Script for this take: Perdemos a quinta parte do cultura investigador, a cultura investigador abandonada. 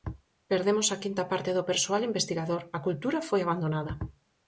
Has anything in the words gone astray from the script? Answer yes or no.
yes